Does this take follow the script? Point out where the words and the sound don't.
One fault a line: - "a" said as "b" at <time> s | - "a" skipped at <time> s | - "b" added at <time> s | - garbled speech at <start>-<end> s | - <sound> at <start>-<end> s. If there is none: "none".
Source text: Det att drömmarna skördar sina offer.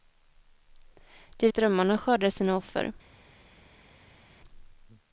none